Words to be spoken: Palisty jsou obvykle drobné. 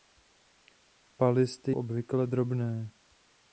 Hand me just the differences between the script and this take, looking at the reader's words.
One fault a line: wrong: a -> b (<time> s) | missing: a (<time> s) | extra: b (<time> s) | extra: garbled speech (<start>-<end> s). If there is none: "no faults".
missing: jsou (1.7 s)